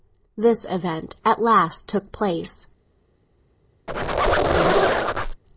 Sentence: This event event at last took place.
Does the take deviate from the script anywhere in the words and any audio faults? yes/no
yes